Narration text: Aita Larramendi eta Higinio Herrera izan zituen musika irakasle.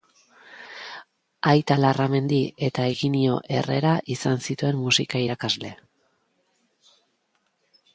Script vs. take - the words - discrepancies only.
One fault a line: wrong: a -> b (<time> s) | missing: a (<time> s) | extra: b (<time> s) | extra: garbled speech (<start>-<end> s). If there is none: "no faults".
no faults